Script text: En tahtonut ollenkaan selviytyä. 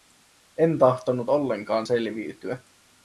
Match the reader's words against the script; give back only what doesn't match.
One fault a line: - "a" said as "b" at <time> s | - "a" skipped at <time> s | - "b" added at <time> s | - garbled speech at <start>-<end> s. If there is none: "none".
none